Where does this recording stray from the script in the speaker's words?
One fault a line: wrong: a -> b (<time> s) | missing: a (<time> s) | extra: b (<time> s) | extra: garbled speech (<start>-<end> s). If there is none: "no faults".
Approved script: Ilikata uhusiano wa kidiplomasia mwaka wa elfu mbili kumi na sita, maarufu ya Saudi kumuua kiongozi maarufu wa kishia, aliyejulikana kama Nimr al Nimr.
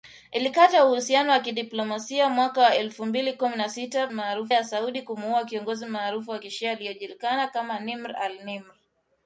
no faults